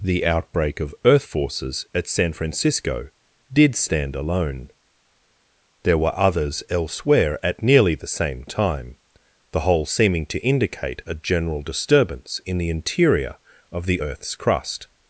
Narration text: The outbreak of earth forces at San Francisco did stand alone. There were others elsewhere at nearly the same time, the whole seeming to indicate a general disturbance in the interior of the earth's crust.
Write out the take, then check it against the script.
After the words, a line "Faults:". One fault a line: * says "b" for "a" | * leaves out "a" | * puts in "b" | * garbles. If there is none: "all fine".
The outbreak of earth forces at San Francisco did stand alone. There were others elsewhere at nearly the same time, the whole seeming to indicate a general disturbance in the interior of the earth's crust.
Faults:
all fine